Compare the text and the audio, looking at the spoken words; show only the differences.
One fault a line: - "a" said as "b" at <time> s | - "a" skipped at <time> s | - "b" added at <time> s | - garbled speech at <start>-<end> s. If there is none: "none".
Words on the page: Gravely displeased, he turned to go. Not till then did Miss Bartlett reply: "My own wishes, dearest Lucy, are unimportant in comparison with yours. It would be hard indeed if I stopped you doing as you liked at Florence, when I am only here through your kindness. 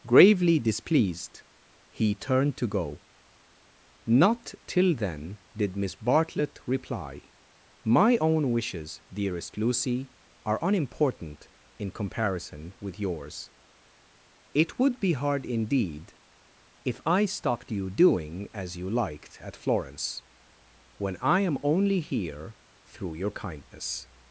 none